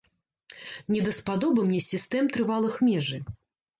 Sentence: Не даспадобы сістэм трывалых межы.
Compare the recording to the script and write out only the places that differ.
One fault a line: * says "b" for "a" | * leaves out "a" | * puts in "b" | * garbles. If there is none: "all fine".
* puts in "мне"